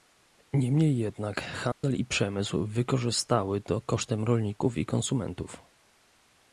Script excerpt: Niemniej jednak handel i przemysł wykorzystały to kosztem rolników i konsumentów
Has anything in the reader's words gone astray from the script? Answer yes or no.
no